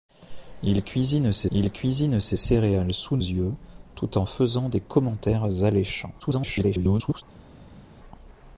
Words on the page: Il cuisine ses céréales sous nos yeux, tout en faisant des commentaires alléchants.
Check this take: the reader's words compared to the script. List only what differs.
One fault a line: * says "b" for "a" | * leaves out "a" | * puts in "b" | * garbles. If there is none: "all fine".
* puts in "il cuisine ses"
* leaves out "nos"
* garbles